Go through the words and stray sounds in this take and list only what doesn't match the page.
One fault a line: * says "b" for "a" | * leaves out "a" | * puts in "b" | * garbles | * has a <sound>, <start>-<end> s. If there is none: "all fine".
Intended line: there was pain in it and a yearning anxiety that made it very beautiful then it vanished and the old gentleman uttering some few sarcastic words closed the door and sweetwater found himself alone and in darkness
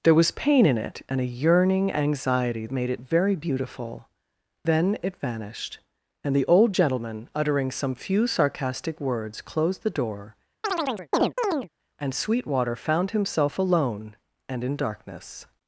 * leaves out "that"
* has a chirp, 10.6-11.7 s